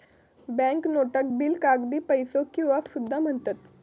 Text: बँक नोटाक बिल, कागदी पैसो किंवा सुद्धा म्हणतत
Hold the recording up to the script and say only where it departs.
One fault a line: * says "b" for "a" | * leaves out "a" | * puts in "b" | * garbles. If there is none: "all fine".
all fine